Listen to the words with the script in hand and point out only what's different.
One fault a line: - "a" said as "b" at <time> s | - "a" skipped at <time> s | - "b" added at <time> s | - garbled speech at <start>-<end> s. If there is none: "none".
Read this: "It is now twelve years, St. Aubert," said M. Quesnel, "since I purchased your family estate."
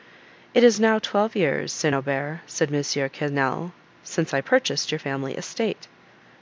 none